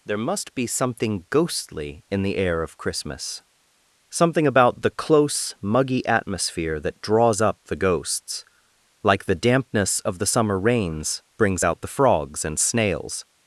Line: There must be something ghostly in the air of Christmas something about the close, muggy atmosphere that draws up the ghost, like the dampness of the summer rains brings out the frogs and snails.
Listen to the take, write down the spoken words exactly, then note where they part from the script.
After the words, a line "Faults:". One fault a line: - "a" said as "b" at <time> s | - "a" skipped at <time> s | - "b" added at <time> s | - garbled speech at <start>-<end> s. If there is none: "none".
There must be something ghostly in the air of Christmas something about the close, muggy atmosphere that draws up the ghosts, like the dampness of the summer rains brings out the frogs and snails.
Faults:
- "ghost" said as "ghosts" at 7.8 s